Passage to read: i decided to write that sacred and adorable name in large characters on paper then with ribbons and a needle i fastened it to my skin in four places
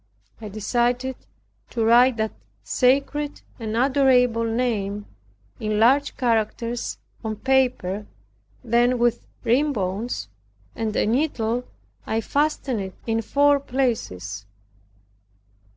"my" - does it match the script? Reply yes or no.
no